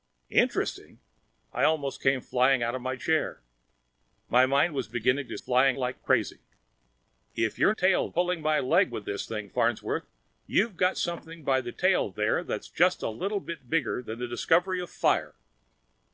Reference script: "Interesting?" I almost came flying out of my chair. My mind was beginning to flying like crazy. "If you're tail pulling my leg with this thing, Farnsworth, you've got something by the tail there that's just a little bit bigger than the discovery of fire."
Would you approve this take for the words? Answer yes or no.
yes